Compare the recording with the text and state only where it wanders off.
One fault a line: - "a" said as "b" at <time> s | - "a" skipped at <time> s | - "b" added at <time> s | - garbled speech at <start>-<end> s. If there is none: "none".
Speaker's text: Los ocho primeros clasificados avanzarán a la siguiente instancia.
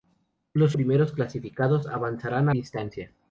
- "ocho" skipped at 0.8 s
- "la siguiente" skipped at 2.5 s